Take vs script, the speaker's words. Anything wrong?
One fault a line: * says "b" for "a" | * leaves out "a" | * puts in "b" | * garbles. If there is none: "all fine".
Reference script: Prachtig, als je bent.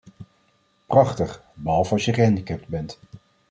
* puts in "behalve"
* puts in "gehandicapt"